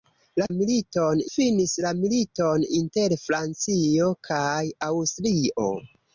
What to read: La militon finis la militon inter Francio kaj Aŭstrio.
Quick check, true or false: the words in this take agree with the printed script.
true